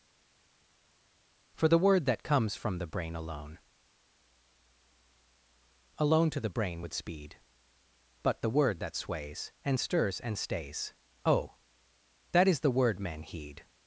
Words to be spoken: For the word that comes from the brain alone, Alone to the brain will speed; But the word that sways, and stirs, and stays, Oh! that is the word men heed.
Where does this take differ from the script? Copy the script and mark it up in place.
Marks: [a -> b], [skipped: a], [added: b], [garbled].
For the word that comes from the brain alone, Alone to the brain [will -> would] speed; But the word that sways, and stirs, and stays, Oh! that is the word men heed.